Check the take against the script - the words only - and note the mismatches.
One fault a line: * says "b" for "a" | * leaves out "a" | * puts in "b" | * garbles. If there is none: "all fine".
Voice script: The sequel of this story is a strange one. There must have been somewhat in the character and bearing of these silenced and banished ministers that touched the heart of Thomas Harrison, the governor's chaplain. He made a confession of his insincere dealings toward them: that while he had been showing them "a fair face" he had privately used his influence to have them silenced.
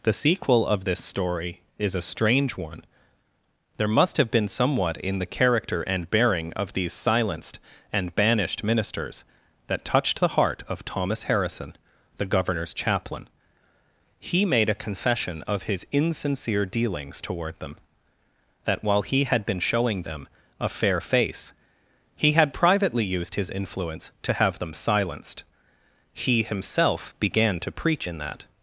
* puts in "He himself began to preach in that"